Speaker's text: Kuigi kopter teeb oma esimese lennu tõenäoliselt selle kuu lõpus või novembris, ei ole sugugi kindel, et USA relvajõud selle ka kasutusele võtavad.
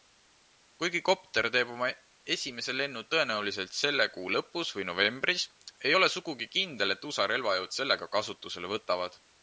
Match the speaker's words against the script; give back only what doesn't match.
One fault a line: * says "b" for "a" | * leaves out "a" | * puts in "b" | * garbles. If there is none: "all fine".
all fine